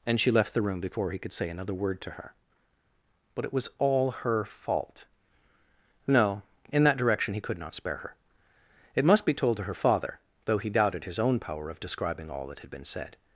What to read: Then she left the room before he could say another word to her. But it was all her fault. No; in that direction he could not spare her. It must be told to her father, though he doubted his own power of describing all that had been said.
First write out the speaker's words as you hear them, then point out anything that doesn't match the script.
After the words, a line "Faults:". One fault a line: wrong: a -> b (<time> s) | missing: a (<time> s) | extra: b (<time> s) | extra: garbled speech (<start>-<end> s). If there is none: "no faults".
And she left the room before he could say another word to her. But it was all her fault. No; in that direction he could not spare her. It must be told to her father, though he doubted his own power of describing all that had been said.
Faults:
wrong: Then -> And (0.1 s)